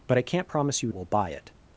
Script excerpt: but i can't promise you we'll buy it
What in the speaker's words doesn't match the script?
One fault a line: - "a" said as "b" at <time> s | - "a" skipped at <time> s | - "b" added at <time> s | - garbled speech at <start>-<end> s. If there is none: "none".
none